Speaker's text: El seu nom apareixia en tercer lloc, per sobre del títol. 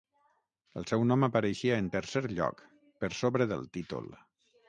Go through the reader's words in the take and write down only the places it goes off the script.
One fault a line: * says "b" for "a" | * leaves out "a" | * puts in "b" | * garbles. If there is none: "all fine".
all fine